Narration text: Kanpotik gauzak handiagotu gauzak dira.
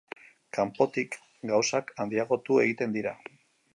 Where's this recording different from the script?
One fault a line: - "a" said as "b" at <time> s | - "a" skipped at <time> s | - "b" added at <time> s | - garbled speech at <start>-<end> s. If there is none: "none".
- "gauzak" said as "egiten" at 2.6 s